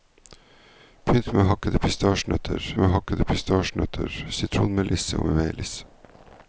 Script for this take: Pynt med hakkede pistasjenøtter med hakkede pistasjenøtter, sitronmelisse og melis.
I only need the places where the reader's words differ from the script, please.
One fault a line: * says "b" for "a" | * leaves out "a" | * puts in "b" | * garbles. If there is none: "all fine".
all fine